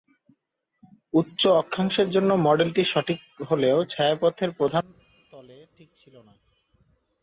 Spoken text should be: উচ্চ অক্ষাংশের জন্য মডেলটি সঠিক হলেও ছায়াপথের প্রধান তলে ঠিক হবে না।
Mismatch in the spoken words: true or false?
true